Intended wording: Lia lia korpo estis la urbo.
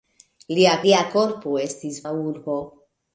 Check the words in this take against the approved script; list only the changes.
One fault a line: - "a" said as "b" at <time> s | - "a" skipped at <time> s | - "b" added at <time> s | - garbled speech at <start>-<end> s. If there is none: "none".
none